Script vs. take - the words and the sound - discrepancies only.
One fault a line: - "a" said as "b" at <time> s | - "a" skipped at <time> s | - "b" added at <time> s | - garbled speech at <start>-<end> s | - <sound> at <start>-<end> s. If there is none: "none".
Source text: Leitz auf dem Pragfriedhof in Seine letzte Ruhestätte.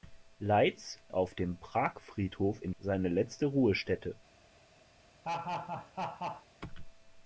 - laugh at 5.2-6.5 s